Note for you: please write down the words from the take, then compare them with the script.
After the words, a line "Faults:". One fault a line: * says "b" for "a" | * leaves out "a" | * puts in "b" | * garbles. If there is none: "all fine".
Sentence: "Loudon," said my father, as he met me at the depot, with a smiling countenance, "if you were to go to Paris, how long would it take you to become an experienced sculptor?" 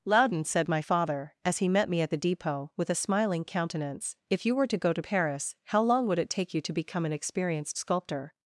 "Loudon," said my father, as he met me at the depot, with a smiling countenance, "if you were to go to Paris, how long would it take you to become an experienced sculptor?"
Faults:
all fine